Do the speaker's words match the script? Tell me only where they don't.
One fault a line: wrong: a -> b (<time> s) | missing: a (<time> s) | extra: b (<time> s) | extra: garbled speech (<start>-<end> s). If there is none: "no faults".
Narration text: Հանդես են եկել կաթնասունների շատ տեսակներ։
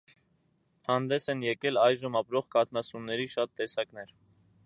extra: այժմ ապրող (1.8 s)